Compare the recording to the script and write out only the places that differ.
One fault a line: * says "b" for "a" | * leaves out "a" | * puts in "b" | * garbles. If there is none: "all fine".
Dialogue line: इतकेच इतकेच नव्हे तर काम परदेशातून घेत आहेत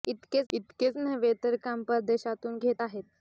all fine